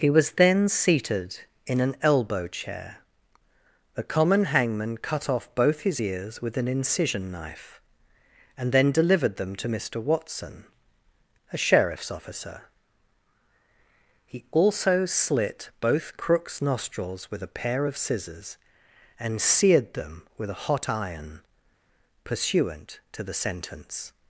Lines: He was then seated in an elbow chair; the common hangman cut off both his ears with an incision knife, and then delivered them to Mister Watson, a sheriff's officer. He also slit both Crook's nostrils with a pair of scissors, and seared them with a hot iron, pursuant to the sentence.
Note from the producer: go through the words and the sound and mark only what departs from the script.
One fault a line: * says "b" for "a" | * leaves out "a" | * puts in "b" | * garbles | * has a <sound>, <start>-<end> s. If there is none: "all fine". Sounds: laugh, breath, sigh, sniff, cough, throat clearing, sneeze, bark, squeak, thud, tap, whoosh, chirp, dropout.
all fine